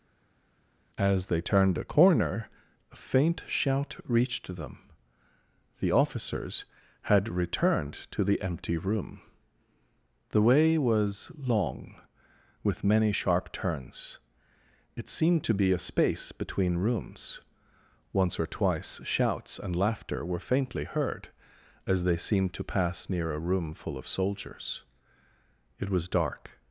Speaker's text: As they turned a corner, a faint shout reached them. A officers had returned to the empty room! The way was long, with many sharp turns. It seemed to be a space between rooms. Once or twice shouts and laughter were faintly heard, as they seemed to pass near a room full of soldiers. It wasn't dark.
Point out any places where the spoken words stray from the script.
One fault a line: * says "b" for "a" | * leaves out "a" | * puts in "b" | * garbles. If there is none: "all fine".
* says "The" for "A"
* says "was" for "wasn't"